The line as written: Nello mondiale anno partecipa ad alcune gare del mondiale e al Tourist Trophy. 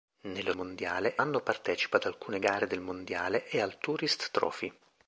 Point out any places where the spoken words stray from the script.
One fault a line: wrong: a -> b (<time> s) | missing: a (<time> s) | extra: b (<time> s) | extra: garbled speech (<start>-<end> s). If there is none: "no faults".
no faults